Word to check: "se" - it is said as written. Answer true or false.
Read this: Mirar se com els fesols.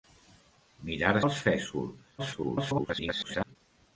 false